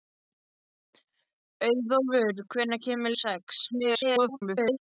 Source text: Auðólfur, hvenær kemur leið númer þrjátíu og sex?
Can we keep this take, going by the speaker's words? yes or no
no